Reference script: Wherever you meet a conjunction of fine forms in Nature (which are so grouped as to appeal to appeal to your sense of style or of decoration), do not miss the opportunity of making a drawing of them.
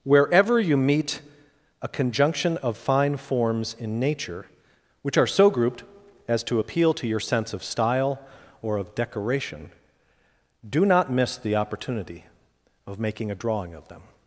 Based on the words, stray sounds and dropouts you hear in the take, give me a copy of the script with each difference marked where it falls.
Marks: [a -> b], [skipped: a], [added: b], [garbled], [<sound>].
Wherever you meet a conjunction of fine forms in Nature (which are so grouped as to appeal to [skipped: appeal to] your sense of style or of decoration), do not miss the opportunity of making a drawing of them.